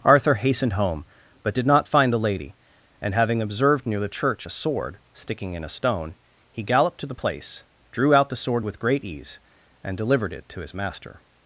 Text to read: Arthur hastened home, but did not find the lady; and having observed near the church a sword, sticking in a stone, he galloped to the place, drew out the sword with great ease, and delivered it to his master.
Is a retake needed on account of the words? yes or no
no